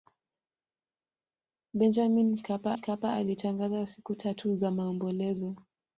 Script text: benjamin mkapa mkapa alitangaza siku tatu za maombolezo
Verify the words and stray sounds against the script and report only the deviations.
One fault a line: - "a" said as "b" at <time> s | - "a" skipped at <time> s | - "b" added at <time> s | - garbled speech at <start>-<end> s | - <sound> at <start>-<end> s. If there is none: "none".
none